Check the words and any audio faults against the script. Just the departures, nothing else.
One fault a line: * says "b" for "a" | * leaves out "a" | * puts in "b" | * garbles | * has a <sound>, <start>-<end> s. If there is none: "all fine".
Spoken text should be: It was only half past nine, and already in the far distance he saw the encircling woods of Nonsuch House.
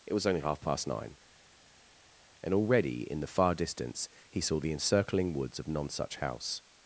all fine